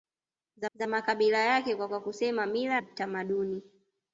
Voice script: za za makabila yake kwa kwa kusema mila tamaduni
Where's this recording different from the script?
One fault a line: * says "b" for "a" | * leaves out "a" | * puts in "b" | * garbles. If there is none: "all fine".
all fine